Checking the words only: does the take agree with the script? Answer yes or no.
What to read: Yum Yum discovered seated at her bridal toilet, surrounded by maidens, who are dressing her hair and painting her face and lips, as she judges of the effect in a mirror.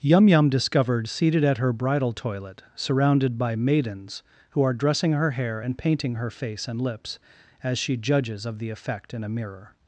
yes